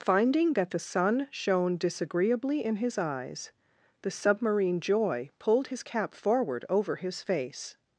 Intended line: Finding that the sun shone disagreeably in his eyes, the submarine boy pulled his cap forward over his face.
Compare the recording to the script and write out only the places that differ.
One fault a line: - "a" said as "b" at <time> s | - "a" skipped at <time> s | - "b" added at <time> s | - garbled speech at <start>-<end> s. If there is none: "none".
- "boy" said as "joy" at 4.8 s